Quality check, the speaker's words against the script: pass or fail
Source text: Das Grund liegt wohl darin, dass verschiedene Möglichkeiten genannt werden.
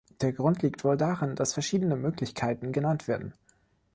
fail